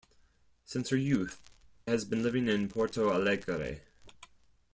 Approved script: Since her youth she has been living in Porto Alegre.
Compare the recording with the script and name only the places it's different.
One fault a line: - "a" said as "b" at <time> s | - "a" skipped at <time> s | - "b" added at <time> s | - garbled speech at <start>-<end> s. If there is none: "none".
- "she" skipped at 1.4 s